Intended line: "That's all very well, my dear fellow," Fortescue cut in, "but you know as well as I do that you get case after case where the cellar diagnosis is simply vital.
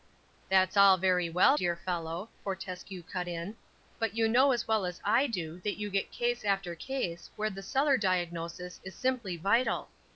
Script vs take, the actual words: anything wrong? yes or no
yes